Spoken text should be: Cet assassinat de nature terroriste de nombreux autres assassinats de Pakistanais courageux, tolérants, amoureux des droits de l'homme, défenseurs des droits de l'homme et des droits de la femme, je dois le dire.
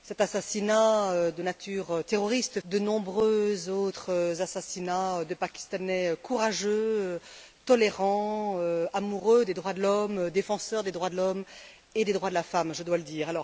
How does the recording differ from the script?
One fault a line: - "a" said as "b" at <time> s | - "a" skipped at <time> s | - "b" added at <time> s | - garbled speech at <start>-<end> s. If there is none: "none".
none